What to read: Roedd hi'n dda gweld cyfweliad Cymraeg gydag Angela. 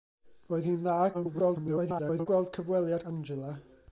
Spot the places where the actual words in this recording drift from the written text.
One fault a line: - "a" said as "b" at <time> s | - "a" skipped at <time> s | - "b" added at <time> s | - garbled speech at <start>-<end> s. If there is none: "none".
- garbled speech at 1.1-2.3 s
- "Cymraeg gydag" skipped at 3.0 s